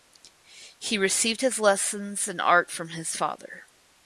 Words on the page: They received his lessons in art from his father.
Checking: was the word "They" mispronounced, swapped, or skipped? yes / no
yes